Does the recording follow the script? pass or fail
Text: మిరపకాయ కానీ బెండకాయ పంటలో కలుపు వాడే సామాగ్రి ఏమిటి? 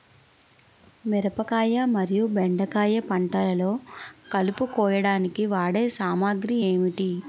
fail